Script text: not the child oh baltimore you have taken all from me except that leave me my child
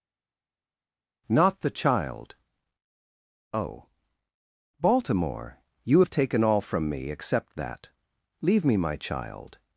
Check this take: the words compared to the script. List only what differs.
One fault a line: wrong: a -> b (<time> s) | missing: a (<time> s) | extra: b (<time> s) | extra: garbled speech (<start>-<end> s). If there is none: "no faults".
no faults